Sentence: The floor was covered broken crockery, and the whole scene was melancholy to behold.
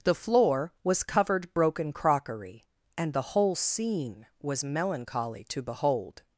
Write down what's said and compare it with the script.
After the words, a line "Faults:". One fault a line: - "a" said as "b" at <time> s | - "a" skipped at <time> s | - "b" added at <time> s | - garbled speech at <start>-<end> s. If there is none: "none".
The floor was covered broken crockery, and the whole scene was melancholy to behold.
Faults:
none